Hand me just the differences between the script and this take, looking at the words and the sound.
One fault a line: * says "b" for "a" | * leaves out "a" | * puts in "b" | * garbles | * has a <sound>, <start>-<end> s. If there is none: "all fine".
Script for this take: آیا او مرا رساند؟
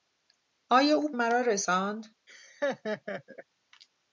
* has a laugh, 2.3-3.4 s